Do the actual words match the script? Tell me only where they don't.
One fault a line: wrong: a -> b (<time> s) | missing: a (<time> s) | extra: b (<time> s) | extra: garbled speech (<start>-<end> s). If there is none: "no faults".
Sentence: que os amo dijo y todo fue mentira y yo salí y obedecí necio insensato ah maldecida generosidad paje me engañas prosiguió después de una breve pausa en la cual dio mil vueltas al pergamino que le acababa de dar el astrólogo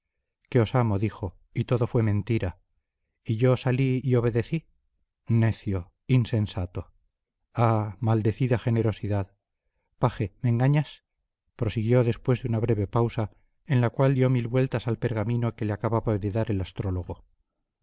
no faults